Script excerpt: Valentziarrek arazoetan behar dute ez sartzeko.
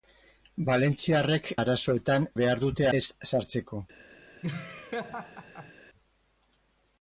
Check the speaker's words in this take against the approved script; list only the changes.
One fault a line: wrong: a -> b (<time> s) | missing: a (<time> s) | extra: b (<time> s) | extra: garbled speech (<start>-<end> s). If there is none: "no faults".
no faults